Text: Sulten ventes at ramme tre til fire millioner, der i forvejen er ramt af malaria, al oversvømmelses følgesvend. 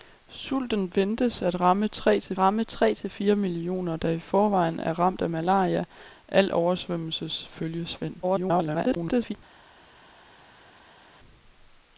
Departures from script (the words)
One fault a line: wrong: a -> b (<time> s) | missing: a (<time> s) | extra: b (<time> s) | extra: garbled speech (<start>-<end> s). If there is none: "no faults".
extra: ramme tre til (2.4 s)
extra: garbled speech (8.2-9.4 s)